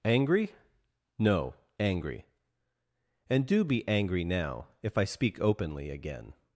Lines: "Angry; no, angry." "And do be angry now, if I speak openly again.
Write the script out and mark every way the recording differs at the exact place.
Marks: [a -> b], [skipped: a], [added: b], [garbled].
"Angry; no, angry." "And do be angry now, if I speak openly again.